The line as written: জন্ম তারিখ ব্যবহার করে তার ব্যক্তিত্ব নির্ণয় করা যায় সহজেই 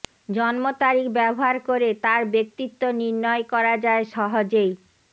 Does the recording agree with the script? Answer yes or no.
yes